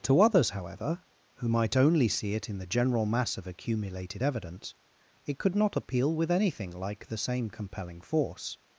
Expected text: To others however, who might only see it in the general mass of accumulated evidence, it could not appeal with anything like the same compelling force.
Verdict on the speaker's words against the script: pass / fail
pass